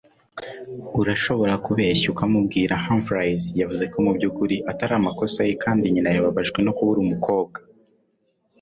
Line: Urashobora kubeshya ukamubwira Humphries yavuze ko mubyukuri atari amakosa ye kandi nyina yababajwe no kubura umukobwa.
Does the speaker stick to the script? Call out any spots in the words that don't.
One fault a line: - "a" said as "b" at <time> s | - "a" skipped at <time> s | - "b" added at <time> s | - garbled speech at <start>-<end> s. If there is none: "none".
none